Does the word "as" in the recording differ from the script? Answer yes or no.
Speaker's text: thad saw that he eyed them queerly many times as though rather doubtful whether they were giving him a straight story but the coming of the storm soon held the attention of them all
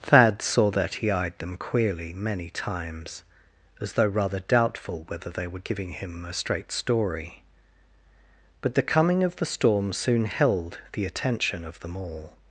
no